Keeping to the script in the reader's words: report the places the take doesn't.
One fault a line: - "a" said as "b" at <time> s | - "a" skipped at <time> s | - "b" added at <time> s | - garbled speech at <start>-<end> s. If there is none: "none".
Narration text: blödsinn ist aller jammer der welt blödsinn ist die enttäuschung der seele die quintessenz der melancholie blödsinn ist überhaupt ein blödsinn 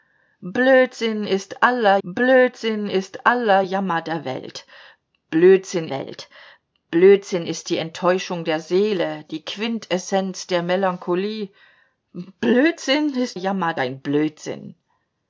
- "blödsinn ist aller" added at 2.0 s
- "welt blödsinn" added at 5.9 s
- "überhaupt" said as "jammer" at 13.3 s